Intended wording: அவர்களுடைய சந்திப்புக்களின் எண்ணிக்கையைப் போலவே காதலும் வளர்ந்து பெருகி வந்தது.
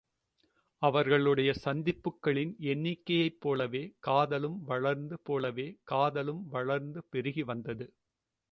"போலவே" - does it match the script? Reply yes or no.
yes